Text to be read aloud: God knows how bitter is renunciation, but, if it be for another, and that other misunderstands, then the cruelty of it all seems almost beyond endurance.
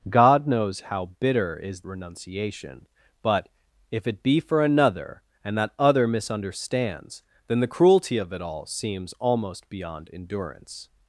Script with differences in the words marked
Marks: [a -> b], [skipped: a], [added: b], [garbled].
God knows how bitter is renunciation, but, if it be for another, and that other misunderstands, then the cruelty of it all seems almost beyond endurance.